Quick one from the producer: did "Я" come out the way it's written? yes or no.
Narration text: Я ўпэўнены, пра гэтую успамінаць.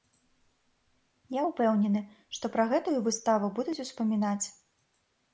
yes